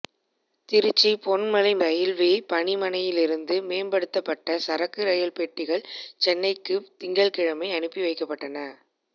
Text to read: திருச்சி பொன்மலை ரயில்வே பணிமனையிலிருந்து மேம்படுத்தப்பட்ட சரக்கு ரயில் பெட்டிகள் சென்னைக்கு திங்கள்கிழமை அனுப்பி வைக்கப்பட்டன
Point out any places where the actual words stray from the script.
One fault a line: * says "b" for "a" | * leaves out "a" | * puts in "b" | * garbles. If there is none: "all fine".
all fine